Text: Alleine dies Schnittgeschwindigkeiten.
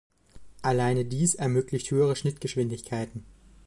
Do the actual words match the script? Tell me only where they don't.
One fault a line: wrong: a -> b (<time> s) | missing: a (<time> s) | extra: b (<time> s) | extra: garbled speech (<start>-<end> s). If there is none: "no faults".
extra: ermöglicht höhere (1.4 s)